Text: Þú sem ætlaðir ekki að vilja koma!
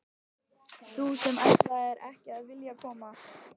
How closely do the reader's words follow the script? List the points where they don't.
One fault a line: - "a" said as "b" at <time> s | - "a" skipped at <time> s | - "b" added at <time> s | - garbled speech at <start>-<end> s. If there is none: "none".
none